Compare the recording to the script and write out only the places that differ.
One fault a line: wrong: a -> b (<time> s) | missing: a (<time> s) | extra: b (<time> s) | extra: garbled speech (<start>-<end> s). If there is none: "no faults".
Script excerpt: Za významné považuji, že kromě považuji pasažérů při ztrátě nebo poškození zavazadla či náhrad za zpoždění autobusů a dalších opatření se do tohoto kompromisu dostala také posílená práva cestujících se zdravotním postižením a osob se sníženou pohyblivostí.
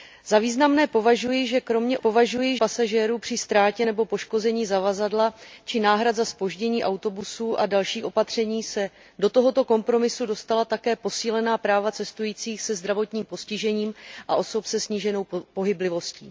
no faults